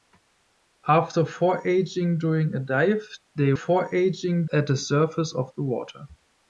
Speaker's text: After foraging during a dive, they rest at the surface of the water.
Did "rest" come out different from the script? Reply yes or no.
yes